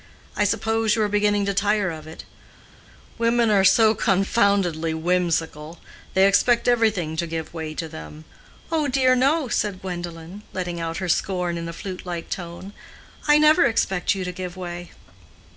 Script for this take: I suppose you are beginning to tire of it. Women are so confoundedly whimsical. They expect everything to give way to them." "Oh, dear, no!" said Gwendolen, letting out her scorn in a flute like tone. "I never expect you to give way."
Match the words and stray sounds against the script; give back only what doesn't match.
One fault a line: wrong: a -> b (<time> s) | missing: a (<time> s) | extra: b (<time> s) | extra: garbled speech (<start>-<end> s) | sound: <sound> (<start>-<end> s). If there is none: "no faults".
no faults